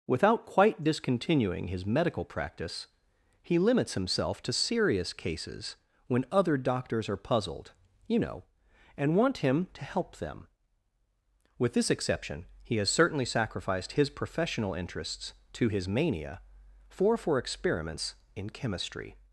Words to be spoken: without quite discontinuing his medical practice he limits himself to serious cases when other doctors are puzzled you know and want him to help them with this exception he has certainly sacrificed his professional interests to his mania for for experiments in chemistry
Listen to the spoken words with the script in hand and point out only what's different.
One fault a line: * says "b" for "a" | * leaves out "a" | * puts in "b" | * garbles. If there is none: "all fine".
all fine